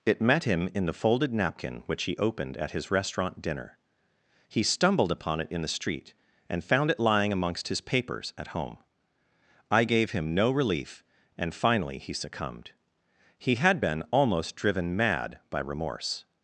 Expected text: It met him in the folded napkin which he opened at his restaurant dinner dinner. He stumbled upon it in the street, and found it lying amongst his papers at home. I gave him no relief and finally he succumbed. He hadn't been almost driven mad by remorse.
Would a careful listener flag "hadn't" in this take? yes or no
yes